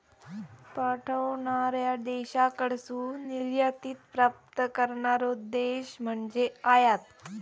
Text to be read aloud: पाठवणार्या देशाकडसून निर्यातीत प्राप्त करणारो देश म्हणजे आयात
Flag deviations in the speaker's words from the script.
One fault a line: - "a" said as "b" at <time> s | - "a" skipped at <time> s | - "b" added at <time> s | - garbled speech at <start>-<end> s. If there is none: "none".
none